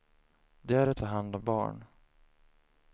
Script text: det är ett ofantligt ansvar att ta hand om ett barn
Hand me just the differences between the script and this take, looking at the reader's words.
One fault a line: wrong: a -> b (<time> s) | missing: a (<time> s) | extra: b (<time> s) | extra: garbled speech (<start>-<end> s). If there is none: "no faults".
missing: ofantligt ansvar att (1.0 s)
missing: ett (1.4 s)